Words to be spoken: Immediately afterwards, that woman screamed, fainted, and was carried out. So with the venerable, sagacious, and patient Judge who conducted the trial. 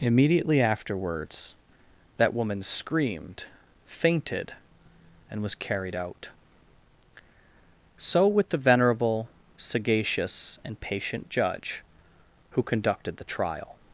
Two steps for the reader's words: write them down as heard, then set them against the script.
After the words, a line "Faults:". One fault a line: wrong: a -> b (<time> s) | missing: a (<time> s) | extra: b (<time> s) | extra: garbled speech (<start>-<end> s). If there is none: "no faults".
Immediately afterwards, that woman screamed, fainted, and was carried out. So with the venerable, sagacious, and patient Judge who conducted the trial.
Faults:
no faults